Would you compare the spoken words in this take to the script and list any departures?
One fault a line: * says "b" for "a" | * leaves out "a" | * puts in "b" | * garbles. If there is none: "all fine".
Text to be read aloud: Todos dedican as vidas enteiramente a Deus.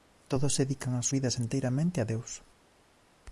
all fine